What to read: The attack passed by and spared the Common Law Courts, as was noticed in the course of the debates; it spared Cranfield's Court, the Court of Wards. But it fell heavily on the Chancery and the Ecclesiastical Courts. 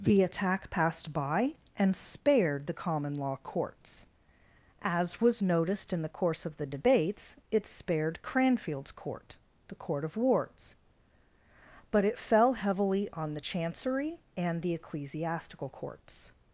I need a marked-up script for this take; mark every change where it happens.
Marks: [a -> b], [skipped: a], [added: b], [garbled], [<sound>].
The attack passed by and spared the Common Law Courts, as was noticed in the course of the debates; it spared Cranfield's Court, the Court of Wards. But it fell heavily on the Chancery and the Ecclesiastical Courts.